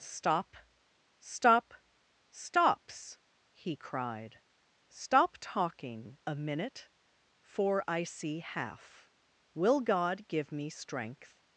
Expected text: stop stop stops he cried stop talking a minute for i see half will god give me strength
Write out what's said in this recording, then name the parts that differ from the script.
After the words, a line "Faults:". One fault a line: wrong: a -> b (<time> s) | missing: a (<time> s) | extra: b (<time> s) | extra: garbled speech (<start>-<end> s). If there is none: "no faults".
stop stop stops he cried stop talking a minute for i see half will god give me strength
Faults:
no faults